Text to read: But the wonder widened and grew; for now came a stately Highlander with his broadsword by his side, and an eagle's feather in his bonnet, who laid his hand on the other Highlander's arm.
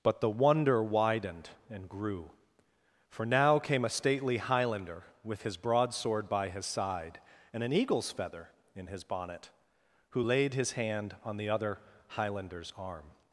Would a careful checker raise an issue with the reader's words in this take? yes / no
no